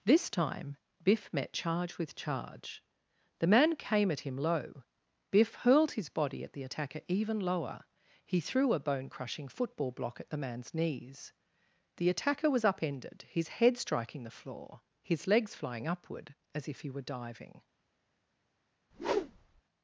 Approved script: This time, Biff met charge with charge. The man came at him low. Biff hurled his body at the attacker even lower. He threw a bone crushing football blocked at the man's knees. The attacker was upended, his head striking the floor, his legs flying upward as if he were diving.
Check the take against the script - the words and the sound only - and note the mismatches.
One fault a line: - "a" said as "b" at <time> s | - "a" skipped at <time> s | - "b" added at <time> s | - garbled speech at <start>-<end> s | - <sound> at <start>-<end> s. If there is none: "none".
- "blocked" said as "block" at 9.9 s
- whoosh at 18.9-19.6 s